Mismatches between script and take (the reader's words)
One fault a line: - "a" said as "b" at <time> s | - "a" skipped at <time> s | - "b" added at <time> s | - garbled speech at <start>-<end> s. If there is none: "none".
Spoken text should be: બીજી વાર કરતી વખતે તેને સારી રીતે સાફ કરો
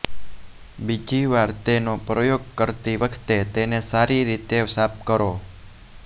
- "તેનો પ્રયોગ" added at 1.6 s